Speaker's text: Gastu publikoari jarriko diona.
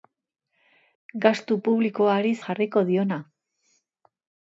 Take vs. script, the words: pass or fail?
pass